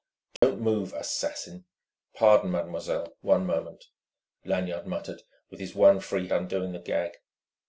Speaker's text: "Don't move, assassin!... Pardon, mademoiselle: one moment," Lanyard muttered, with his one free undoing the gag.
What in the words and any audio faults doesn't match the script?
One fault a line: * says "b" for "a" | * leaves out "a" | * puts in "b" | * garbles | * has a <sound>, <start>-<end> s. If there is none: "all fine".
* has a dropout, 0.4-0.4 s